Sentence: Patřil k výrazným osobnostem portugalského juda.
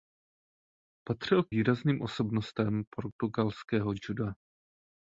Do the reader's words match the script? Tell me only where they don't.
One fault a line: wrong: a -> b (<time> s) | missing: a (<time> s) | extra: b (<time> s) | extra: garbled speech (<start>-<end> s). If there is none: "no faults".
no faults